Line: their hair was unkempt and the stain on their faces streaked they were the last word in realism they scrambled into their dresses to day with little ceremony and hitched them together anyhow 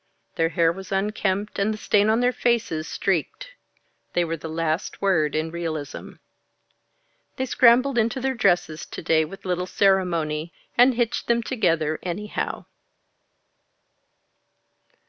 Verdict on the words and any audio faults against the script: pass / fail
pass